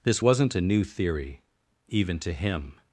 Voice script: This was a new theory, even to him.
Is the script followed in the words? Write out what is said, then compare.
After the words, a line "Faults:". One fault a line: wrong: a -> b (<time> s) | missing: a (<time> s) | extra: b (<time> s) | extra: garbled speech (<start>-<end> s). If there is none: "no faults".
This wasn't a new theory, even to him.
Faults:
wrong: was -> wasn't (0.2 s)